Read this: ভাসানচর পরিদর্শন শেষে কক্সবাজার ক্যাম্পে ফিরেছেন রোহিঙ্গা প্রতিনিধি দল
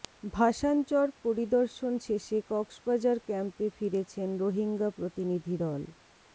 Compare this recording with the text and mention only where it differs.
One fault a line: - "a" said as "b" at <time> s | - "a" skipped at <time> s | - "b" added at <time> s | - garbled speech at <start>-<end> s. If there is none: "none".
none